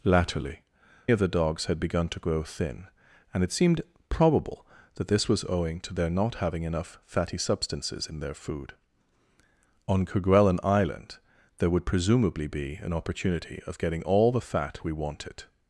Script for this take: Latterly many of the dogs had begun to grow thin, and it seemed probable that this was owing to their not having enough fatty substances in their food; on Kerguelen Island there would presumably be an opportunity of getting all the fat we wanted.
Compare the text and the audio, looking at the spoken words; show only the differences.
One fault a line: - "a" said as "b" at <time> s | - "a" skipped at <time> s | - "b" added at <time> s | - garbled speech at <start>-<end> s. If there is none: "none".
- "many" skipped at 0.6 s